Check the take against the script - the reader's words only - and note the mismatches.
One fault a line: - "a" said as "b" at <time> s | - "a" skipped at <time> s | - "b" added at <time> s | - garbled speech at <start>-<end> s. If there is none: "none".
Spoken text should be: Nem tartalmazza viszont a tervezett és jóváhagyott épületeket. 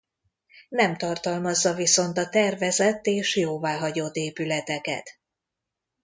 none